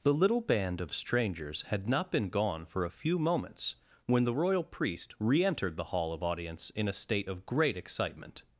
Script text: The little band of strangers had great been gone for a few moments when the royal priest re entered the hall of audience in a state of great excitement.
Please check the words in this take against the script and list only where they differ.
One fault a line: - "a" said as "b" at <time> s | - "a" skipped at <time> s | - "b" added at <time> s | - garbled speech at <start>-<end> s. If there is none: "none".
- "great" said as "not" at 1.9 s